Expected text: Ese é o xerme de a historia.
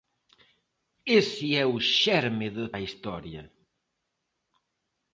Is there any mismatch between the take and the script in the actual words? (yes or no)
no